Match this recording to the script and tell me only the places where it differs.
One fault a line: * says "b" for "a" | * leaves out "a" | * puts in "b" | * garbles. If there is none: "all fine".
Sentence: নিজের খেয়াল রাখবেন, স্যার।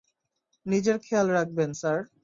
all fine